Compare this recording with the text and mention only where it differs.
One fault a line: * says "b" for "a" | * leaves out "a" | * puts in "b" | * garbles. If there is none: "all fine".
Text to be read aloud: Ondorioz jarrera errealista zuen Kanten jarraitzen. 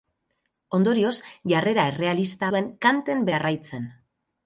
all fine